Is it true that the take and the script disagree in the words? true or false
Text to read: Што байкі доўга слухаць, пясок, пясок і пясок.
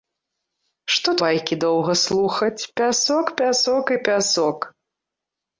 false